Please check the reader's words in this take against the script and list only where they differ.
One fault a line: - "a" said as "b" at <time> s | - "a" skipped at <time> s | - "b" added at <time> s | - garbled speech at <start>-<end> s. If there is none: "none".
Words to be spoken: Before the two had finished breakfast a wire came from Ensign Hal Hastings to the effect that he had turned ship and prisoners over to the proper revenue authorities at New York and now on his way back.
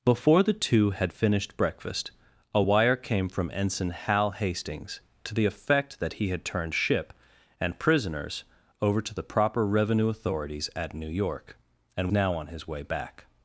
none